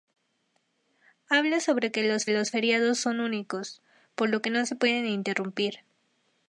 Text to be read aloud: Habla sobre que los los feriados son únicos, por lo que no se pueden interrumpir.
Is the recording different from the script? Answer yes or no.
no